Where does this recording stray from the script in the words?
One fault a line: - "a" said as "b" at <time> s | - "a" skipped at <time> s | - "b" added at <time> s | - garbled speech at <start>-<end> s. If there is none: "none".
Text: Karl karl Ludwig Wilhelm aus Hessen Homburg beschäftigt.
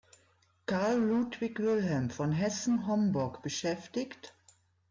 - "karl" skipped at 1.0 s
- "aus" said as "von" at 2.1 s